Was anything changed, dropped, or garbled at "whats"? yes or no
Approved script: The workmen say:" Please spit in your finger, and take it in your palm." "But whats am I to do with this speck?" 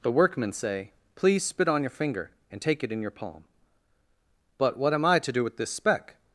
yes